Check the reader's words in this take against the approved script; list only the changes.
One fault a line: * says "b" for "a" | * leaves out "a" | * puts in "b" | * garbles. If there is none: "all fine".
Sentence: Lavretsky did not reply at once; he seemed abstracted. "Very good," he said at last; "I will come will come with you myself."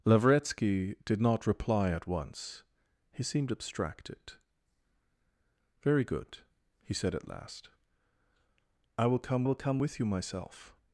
all fine